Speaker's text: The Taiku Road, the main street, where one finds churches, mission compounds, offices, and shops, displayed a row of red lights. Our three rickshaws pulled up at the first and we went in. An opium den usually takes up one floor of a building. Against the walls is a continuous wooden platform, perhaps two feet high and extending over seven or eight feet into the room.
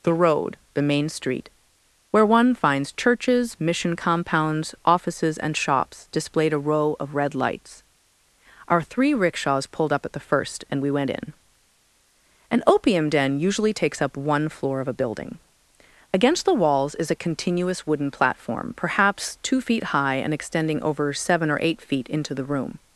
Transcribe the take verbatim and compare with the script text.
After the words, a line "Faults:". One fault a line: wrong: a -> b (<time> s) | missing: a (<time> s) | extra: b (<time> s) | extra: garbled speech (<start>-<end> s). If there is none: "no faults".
The Road, the main street, where one finds churches, mission compounds, offices, and shops, displayed a row of red lights. Our three rickshaws pulled up at the first and we went in. An opium den usually takes up one floor of a building. Against the walls is a continuous wooden platform, perhaps two feet high and extending over seven or eight feet into the room.
Faults:
missing: Taiku (0.1 s)